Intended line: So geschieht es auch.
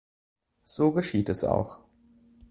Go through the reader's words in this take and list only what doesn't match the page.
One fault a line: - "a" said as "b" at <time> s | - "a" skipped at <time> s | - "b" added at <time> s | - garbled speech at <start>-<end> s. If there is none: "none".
none